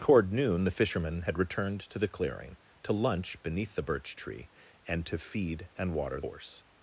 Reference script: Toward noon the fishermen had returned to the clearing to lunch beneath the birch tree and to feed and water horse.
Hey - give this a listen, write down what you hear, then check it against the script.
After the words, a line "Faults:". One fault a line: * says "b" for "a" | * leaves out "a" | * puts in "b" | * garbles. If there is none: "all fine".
Toward noon the fishermen had returned to the clearing to lunch beneath the birch tree and to feed and water horse.
Faults:
all fine